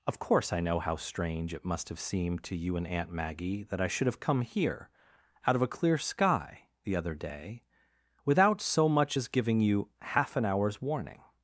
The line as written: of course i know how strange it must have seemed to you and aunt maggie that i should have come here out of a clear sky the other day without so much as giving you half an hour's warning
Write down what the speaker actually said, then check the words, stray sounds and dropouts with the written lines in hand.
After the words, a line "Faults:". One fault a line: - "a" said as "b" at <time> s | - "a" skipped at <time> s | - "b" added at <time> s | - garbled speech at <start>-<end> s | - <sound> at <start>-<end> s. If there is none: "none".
of course i know how strange it must have seemed to you and aunt maggie that i should have come here out of a clear sky the other day without so much as giving you half an hour's warning
Faults:
none